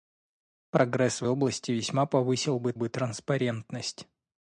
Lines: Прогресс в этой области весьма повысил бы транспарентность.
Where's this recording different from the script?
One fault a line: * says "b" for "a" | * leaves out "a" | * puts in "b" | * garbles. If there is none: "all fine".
* leaves out "этой"
* puts in "бы"